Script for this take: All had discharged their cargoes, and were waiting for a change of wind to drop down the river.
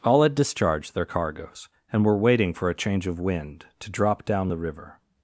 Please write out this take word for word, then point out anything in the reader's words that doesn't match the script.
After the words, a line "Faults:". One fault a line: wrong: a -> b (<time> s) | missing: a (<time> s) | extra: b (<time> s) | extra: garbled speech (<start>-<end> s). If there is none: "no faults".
All had discharged their cargoes, and were waiting for a change of wind to drop down the river.
Faults:
no faults